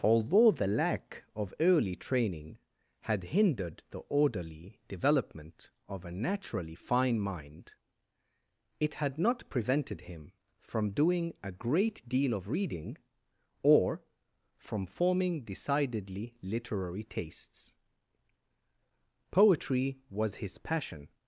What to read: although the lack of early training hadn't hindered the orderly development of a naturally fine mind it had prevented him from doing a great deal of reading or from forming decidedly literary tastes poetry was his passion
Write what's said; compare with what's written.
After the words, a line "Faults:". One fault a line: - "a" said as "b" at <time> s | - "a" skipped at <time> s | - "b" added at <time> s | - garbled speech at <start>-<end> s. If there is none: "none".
although the lack of early training had hindered the orderly development of a naturally fine mind it had not prevented him from doing a great deal of reading or from forming decidedly literary tastes poetry was his passion
Faults:
- "hadn't" said as "had" at 3.0 s
- "not" added at 9.2 s